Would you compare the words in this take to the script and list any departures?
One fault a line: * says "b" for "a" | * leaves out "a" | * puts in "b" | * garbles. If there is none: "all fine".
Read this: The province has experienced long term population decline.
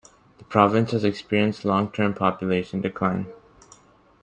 all fine